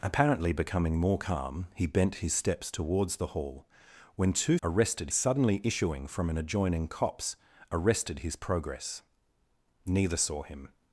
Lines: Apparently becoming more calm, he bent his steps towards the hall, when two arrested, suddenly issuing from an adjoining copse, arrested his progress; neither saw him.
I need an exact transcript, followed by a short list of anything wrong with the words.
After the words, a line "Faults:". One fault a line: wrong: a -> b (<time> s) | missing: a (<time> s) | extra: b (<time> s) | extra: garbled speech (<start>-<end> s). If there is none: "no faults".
Apparently becoming more calm, he bent his steps towards the hall, when two arrested, suddenly issuing from an adjoining copse, arrested his progress; neither saw him.
Faults:
no faults